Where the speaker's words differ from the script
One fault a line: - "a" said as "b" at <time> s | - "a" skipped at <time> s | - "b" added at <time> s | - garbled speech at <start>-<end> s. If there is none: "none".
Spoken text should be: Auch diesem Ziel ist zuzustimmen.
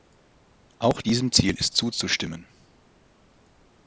none